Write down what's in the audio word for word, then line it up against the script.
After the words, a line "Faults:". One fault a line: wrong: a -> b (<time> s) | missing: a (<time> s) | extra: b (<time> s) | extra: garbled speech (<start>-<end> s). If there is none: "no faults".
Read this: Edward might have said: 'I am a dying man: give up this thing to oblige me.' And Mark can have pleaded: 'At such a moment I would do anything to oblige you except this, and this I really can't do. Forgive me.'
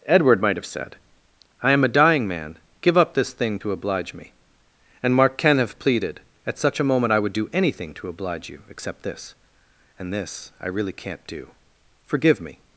Edward might have said: 'I am a dying man: give up this thing to oblige me.' And Mark can have pleaded: 'At such a moment I would do anything to oblige you except this, and this I really can't do. Forgive me.'
Faults:
no faults